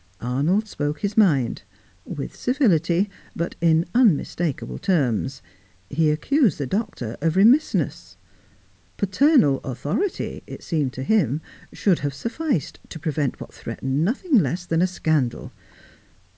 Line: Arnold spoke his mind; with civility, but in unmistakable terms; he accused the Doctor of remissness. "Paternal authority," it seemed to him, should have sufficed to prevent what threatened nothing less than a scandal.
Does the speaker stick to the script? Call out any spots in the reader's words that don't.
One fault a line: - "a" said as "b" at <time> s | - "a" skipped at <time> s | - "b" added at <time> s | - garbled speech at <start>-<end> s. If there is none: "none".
none